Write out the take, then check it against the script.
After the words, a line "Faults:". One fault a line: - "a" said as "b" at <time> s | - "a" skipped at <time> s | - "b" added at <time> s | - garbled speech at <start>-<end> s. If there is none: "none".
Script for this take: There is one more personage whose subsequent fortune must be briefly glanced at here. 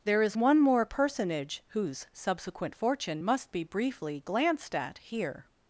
There is one more personage whose subsequent fortune must be briefly glanced at here.
Faults:
none